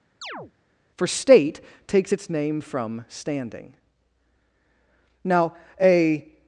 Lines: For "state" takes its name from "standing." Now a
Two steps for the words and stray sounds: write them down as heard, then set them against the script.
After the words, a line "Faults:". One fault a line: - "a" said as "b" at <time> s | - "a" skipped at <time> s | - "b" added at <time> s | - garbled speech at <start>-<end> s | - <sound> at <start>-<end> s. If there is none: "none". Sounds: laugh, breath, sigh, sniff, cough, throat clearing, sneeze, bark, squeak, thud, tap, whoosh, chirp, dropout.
For "state" takes its name from "standing." Now a
Faults:
- chirp at 0.2-0.5 s